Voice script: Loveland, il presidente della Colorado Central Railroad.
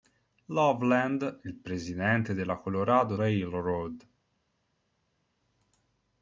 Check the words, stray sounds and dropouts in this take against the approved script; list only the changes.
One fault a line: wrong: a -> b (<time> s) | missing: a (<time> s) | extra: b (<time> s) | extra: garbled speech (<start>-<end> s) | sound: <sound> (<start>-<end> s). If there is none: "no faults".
missing: Central (3.2 s)